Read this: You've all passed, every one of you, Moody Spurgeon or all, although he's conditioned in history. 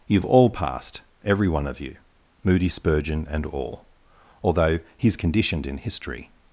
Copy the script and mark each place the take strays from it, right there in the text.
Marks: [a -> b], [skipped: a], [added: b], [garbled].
You've all passed, every one of you, Moody Spurgeon [or -> and] all, although he's conditioned in history.